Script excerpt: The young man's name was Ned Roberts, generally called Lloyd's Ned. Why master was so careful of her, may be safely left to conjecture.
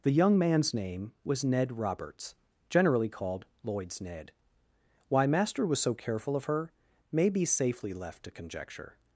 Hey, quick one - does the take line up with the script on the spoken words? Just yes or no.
yes